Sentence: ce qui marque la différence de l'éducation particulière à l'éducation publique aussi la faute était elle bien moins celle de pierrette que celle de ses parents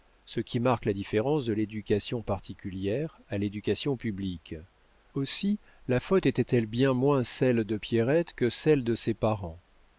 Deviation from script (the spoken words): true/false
false